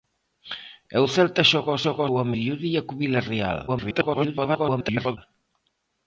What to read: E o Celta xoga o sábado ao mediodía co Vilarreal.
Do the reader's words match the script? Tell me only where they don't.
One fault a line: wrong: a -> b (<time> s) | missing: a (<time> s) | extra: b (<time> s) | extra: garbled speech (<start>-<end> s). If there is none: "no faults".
wrong: sábado -> xoga (1.8 s)
extra: garbled speech (3.7-5.2 s)